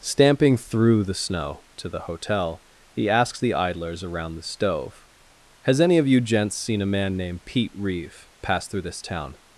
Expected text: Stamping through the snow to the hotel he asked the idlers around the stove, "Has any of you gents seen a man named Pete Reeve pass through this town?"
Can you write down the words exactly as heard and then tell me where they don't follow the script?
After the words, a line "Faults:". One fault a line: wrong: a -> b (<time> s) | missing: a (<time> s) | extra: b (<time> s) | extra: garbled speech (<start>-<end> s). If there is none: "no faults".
Stamping through the snow to the hotel he asks the idlers around the stove, "Has any of you gents seen a man named Pete Reeve pass through this town?"
Faults:
wrong: asked -> asks (3.1 s)